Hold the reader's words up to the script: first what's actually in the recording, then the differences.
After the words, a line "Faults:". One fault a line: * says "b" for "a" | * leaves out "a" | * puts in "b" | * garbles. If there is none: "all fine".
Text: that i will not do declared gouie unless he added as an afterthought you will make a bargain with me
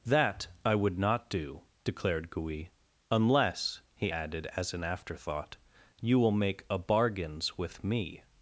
that i would not do declared gouie unless he added as an afterthought you will make a bargains with me
Faults:
* says "would" for "will"
* says "bargains" for "bargain"